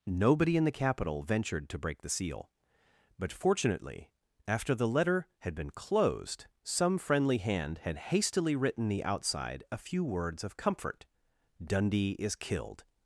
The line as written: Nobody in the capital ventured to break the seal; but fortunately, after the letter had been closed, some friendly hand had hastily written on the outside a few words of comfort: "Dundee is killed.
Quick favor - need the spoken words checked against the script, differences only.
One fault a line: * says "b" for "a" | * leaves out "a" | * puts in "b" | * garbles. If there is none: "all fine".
* leaves out "on"